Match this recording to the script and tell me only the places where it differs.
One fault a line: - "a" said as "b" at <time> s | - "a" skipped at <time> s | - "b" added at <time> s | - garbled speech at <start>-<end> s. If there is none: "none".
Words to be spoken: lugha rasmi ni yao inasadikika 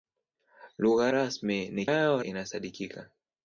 none